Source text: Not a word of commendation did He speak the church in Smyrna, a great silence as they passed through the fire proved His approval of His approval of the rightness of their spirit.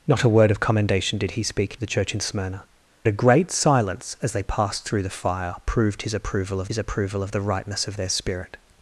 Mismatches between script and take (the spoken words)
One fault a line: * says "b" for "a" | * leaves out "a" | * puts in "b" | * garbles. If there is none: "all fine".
all fine